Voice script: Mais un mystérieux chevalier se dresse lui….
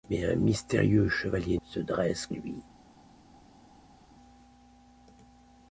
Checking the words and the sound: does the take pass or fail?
pass